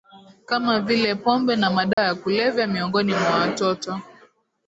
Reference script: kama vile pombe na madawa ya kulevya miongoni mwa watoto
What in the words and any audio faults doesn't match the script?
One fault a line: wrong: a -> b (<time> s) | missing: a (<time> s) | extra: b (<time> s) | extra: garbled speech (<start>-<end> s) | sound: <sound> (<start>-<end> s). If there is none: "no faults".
sound: dropout (1.9-2.0 s)